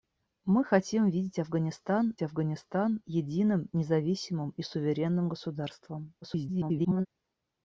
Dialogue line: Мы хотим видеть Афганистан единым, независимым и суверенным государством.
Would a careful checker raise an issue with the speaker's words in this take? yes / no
yes